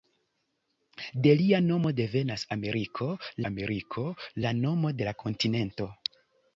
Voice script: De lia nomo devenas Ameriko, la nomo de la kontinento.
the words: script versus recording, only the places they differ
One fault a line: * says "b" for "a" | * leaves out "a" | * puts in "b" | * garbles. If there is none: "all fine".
* puts in "Ameriko"